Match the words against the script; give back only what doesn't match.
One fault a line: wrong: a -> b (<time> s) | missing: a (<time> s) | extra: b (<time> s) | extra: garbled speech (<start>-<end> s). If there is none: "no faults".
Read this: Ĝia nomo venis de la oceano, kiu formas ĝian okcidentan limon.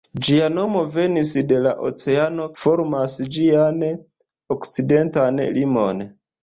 missing: kiu (2.5 s)